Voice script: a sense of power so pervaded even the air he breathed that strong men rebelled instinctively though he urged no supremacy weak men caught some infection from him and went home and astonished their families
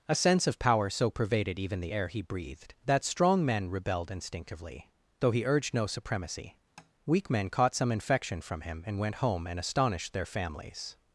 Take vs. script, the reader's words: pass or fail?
pass